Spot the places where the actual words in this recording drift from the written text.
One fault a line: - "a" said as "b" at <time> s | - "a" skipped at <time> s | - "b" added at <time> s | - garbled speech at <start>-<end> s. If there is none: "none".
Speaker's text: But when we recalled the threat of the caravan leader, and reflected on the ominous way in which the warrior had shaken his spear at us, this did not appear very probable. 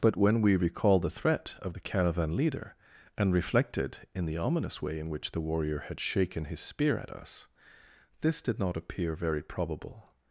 - "on" said as "in" at 4.1 s